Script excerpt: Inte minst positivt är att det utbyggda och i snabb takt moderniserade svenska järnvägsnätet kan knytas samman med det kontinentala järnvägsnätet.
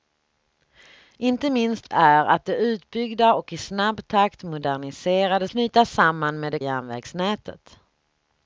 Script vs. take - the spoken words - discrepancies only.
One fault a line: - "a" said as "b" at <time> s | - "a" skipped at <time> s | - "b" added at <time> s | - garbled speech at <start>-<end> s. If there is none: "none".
- "positivt" skipped at 1.9 s
- "svenska järnvägsnätet kan" skipped at 5.5 s
- "kontinentala" skipped at 6.6 s